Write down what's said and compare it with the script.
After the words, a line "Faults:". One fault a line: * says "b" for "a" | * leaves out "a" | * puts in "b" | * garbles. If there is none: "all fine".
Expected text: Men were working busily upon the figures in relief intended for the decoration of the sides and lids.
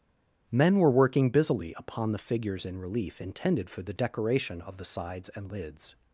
Men were working busily upon the figures in relief intended for the decoration of the sides and lids.
Faults:
all fine